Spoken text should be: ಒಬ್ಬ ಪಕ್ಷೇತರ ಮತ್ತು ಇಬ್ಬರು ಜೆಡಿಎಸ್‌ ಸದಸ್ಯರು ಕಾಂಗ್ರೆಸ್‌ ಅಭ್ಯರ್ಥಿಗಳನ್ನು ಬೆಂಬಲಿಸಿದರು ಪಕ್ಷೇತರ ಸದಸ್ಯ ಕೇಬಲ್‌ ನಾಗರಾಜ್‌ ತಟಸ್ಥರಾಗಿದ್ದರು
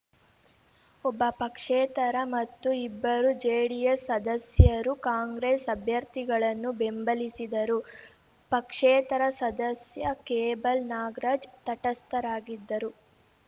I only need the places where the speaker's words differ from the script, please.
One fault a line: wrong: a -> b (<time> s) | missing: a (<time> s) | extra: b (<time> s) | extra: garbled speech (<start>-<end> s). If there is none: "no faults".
no faults